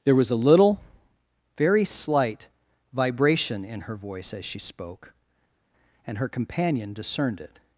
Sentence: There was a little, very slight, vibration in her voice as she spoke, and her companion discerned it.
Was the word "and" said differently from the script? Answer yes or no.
no